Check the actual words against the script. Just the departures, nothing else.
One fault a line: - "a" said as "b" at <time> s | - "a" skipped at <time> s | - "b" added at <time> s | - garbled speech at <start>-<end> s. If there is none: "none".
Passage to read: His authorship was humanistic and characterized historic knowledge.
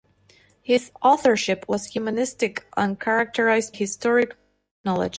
none